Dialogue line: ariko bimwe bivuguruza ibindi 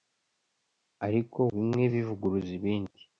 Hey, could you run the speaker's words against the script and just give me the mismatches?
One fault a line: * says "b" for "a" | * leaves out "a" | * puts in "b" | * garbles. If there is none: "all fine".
all fine